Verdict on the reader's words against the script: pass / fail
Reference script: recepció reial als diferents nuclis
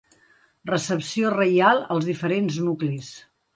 pass